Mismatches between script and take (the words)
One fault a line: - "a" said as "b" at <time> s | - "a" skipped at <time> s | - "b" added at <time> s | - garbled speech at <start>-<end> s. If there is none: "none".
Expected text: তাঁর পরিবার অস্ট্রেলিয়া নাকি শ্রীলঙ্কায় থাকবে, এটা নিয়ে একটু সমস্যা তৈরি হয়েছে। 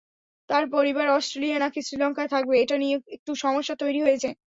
none